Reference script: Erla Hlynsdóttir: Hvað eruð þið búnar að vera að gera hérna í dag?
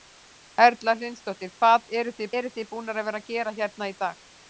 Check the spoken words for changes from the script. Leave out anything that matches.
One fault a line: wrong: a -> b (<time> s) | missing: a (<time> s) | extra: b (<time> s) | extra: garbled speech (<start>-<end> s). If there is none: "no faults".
extra: eruð þið (2.4 s)